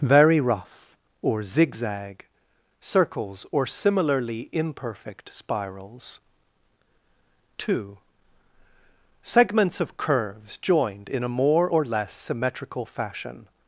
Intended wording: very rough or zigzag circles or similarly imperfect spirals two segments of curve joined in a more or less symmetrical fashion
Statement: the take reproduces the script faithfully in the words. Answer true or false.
false